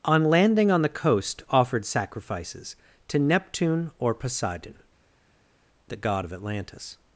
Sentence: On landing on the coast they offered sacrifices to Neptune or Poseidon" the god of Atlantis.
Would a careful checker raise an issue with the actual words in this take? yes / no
yes